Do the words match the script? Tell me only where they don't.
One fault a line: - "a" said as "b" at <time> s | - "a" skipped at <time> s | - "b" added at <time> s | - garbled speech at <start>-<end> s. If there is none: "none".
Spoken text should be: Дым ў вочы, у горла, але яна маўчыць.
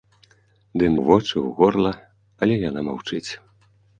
none